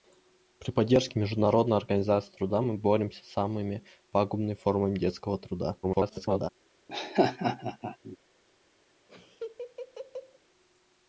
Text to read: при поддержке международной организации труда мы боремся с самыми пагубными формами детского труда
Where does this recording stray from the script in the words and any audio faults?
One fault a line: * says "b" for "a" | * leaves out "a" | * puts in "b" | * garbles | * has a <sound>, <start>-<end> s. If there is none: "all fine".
* garbles
* has a laugh, 6.9-8.2 s
* has a laugh, 9.1-10.4 s